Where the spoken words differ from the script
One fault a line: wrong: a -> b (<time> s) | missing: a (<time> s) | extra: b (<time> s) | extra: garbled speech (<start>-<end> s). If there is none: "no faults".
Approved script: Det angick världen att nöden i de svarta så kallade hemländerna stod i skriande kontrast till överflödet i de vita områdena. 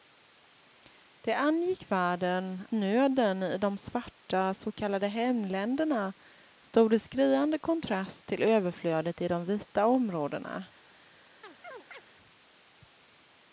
missing: att (2.7 s)